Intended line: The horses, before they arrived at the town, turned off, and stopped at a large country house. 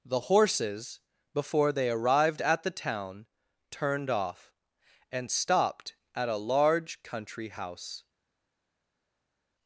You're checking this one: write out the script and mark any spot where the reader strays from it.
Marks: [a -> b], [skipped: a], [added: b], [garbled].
The horses, before they arrived at the town, turned off, and stopped at a large country house.